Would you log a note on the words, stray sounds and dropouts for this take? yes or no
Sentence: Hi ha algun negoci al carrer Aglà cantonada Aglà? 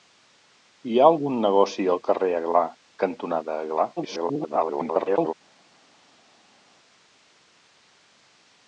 yes